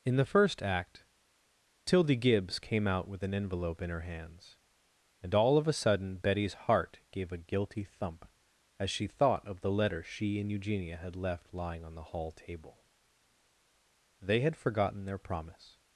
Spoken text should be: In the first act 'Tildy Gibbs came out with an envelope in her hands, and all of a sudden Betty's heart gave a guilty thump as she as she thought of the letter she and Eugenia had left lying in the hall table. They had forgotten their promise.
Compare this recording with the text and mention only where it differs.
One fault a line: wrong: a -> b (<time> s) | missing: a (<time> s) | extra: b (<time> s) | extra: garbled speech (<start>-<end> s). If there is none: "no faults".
missing: as she (9.1 s)
wrong: in -> on (11.8 s)